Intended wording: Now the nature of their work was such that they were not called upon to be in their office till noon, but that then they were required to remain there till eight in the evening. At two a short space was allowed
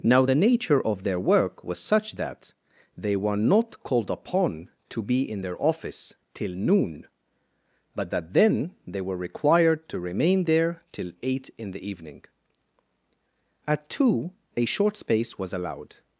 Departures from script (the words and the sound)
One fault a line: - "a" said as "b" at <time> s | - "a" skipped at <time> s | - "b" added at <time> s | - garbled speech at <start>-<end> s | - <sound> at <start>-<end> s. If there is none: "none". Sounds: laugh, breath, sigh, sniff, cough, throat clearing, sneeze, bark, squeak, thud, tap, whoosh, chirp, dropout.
none